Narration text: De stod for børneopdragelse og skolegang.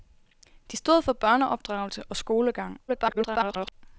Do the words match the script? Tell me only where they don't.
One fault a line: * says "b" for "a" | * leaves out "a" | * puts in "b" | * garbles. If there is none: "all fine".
* garbles